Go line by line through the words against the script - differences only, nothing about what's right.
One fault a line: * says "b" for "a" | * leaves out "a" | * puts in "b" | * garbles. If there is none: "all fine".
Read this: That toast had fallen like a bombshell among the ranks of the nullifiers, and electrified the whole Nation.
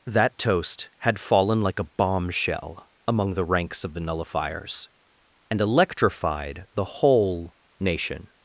all fine